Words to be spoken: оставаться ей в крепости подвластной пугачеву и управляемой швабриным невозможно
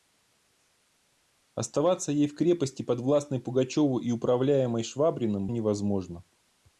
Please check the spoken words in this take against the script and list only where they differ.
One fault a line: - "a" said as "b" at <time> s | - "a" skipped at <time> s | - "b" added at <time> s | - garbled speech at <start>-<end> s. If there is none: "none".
none